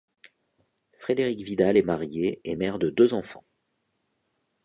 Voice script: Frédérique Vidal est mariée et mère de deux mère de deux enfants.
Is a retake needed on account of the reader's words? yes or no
yes